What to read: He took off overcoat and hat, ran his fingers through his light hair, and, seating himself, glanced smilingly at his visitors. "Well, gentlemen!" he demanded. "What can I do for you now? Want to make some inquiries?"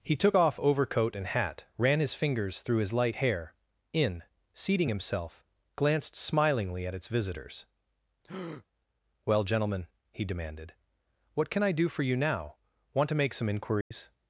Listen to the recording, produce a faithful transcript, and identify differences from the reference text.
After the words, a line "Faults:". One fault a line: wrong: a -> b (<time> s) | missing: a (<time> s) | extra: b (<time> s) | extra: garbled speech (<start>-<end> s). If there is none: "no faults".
He took off overcoat and hat, ran his fingers through his light hair, in, seating himself, glanced smilingly at its visitors. "Well, gentlemen!" he demanded. "What can I do for you now? Want to make some inquiries?"
Faults:
wrong: and -> in (3.9 s)
wrong: his -> its (6.9 s)